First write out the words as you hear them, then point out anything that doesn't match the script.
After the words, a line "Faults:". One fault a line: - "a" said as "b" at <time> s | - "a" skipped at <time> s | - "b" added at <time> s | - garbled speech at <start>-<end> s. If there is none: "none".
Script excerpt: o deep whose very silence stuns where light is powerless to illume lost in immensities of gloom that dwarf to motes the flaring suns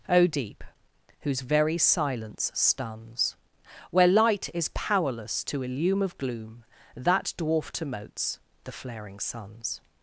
o deep whose very silence stuns where light is powerless to illume of gloom that dwarf to motes the flaring suns
Faults:
- "lost in immensities" skipped at 6.0 s